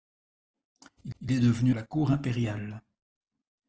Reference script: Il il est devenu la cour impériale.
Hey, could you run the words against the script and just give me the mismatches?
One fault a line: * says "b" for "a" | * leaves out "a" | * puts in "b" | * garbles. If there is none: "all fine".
all fine